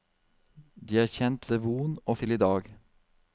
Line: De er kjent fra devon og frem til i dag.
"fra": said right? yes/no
no